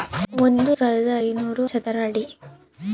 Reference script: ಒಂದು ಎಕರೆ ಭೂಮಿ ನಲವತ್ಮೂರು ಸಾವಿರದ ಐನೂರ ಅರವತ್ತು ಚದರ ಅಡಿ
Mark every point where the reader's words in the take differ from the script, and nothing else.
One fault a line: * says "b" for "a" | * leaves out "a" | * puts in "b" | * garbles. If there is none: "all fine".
* leaves out "ಎಕರೆ ಭೂಮಿ ನಲವತ್ಮೂರು"
* leaves out "ಅರವತ್ತು"